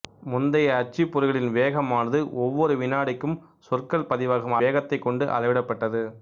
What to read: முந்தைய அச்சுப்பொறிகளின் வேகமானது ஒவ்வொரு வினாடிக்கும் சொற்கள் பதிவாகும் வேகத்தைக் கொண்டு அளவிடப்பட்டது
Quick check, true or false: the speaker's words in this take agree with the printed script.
true